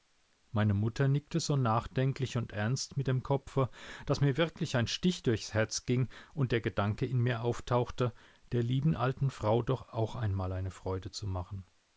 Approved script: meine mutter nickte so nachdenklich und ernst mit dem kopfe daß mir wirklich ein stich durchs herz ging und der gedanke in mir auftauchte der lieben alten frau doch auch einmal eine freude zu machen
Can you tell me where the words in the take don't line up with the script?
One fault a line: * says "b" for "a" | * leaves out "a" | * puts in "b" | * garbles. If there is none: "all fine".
all fine